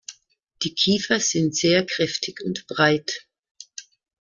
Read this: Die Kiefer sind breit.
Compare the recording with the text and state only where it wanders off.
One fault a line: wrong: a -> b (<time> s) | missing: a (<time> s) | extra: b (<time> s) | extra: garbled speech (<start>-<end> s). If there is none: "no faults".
extra: sehr kräftig und (1.6 s)